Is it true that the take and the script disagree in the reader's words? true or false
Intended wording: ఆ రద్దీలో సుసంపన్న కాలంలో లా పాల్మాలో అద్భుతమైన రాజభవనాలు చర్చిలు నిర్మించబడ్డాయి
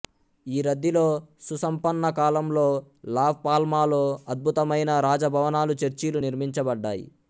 true